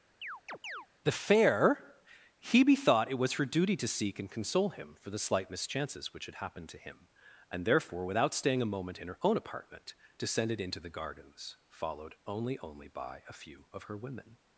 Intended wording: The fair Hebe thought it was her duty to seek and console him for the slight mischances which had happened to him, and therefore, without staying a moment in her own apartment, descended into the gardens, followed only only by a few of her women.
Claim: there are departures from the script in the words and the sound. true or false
true